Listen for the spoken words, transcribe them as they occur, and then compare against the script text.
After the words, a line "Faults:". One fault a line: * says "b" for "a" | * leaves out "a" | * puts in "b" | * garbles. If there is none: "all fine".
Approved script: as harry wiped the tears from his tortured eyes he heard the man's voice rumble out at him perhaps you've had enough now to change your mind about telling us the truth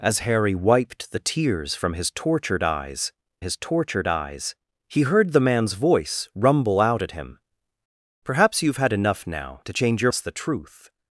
as harry wiped the tears from his tortured eyes his tortured eyes he heard the man's voice rumble out at him perhaps you've had enough now to change your us the truth
Faults:
* puts in "his tortured eyes"
* leaves out "mind about telling"